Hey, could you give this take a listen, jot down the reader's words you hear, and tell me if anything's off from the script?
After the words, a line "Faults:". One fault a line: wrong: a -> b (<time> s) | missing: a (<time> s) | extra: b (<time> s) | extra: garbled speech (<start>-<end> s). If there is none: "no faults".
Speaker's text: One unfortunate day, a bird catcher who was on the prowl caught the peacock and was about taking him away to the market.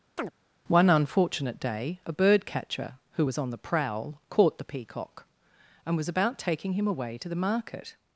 One unfortunate day, a bird catcher who was on the prowl caught the peacock and was about taking him away to the market.
Faults:
no faults